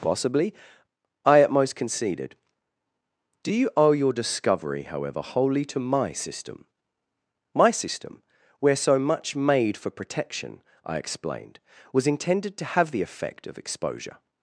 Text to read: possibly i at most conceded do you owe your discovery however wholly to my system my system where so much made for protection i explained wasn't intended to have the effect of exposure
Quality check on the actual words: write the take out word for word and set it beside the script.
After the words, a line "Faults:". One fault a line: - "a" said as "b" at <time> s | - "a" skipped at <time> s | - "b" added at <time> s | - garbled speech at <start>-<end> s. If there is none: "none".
possibly i at most conceded do you owe your discovery however wholly to my system my system where so much made for protection i explained was intended to have the effect of exposure
Faults:
- "wasn't" said as "was" at 11.9 s